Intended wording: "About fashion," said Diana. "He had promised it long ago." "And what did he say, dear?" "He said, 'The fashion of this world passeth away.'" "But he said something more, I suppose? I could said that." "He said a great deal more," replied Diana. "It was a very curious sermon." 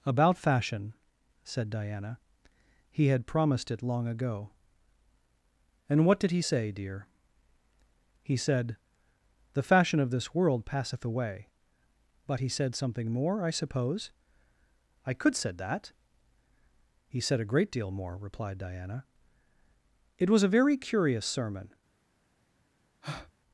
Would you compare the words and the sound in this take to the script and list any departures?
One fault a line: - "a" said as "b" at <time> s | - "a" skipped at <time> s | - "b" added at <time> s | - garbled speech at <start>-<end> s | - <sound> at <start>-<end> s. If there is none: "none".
- breath at 23.0-23.3 s